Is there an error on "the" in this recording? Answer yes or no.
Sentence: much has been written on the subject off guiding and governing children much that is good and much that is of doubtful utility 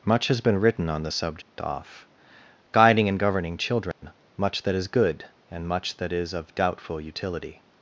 no